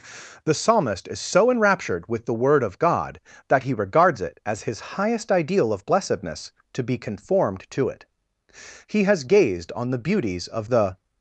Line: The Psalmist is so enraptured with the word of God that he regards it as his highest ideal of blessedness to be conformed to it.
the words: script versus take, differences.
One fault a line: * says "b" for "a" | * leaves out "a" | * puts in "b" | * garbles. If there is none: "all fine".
* puts in "He has gazed on the beauties of the"